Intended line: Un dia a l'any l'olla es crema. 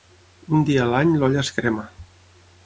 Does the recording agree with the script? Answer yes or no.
yes